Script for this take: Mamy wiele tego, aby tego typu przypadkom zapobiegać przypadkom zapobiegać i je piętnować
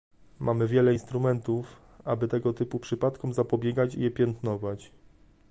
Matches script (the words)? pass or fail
fail